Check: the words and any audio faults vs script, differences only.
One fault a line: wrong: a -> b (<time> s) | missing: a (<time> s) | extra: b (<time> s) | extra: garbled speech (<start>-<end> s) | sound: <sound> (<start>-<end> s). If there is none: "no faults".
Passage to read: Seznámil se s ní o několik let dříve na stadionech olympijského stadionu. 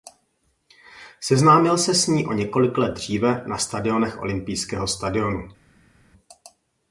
no faults